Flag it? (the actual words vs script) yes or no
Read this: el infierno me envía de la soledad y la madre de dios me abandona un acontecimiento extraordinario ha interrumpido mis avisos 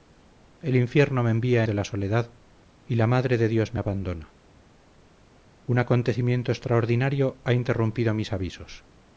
no